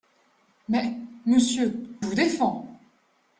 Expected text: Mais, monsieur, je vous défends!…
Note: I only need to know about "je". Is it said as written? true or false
false